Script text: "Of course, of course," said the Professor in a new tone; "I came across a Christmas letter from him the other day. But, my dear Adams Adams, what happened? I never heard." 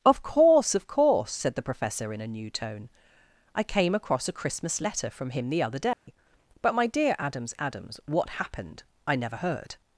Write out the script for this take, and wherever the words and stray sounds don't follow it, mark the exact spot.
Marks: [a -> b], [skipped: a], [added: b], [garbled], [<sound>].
"Of course, of course," said the Professor in a new tone; "I came across a Christmas letter from him the other day. [dropout] But, my dear Adams Adams, what happened? I never heard."